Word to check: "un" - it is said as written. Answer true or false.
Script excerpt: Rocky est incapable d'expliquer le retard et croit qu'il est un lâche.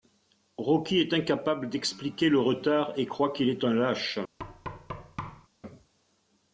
true